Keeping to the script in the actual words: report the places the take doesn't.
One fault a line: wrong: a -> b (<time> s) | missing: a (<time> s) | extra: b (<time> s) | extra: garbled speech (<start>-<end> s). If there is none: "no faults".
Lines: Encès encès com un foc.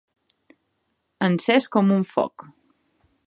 missing: encès (1.7 s)